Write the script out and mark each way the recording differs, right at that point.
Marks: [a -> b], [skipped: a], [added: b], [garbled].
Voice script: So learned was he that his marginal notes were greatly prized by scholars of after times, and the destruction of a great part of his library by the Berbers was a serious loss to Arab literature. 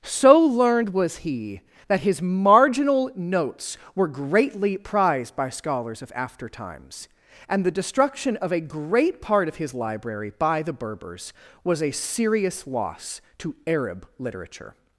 So learned was he that his marginal notes were greatly prized by scholars of after times, and the destruction of a great part of his library by the Berbers was a serious loss to Arab literature.